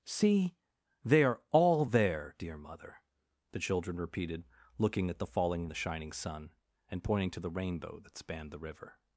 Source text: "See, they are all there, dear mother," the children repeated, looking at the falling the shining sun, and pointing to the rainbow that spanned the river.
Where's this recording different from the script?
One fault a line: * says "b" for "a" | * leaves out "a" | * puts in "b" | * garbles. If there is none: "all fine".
all fine